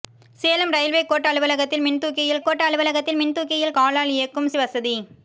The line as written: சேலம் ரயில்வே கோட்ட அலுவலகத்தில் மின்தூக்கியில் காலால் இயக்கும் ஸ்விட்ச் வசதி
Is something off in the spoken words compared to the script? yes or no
yes